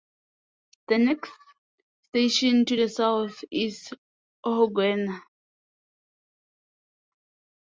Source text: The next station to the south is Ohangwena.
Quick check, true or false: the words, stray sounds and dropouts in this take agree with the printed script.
true